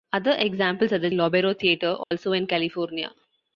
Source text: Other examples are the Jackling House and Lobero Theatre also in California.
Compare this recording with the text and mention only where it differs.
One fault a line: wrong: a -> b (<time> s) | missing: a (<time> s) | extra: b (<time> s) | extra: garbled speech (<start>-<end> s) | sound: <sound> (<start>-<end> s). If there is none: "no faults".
missing: Jackling House and (1.1 s)
sound: dropout (2.0-2.1 s)